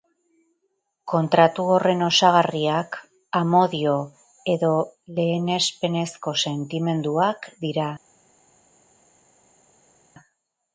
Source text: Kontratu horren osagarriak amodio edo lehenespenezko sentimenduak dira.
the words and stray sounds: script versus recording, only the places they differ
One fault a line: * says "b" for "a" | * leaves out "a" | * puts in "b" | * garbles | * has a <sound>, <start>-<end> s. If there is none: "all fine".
all fine